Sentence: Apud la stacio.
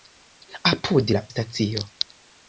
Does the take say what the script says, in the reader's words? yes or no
yes